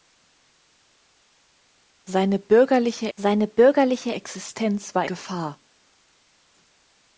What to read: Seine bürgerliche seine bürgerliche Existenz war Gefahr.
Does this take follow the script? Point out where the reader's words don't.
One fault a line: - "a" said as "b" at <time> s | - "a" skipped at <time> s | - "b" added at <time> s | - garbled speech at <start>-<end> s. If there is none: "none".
none